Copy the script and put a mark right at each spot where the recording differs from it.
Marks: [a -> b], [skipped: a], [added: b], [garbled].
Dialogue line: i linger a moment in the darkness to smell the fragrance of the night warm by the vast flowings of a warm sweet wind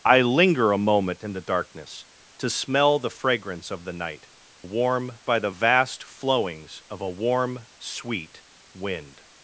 i linger a moment in the darkness to smell the fragrance of the night warm by the vast flowings of a warm sweet wind